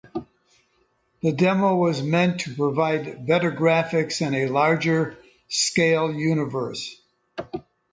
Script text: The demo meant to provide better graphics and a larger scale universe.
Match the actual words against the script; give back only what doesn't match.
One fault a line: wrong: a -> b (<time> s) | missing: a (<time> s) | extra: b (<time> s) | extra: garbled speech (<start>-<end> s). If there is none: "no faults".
extra: was (1.8 s)